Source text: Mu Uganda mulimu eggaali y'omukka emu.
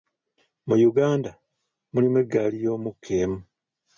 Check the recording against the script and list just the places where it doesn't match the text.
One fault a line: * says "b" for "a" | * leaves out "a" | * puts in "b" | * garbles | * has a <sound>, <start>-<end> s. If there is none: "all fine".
all fine